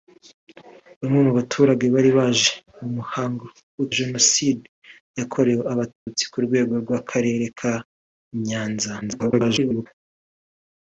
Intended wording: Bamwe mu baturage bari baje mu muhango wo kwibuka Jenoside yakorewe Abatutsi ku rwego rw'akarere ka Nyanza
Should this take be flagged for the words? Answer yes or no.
yes